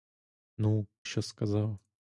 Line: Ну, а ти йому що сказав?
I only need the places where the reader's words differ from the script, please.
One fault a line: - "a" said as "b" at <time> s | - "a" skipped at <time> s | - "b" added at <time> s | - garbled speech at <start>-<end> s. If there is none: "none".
- "а ти йому" skipped at 0.9 s